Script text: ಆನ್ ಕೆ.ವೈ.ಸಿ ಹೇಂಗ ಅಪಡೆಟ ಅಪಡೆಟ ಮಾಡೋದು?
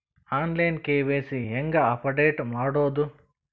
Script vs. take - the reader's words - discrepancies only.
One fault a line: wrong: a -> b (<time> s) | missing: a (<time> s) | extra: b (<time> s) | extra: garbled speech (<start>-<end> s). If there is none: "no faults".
extra: ಲೈನ್ (0.6 s)
missing: ಅಪಡೆಟ (2.4 s)